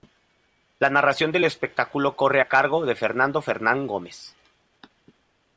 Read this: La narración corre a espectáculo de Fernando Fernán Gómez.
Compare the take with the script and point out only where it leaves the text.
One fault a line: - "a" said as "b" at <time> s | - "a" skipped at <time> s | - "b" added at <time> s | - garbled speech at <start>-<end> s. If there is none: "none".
- "del espectáculo" added at 1.3 s
- "espectáculo" said as "cargo" at 2.5 s